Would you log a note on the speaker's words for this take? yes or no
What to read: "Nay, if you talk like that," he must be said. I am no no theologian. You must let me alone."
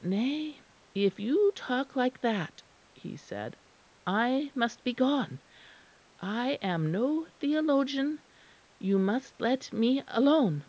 yes